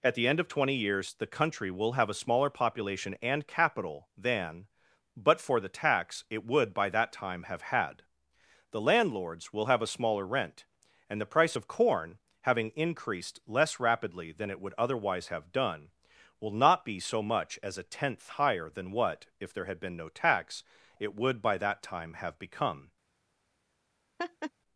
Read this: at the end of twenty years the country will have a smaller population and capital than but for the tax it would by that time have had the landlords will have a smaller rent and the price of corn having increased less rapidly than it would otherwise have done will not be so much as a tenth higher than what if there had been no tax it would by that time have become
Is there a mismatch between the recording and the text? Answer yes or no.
no